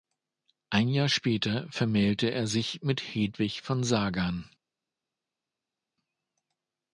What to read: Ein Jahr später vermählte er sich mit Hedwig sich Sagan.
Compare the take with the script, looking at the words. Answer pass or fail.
fail